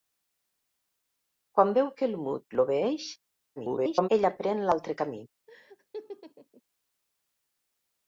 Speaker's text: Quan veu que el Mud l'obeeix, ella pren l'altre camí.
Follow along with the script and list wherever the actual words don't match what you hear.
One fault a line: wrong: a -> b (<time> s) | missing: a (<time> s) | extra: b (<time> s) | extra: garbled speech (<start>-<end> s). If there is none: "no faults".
extra: garbled speech (3.6-4.1 s)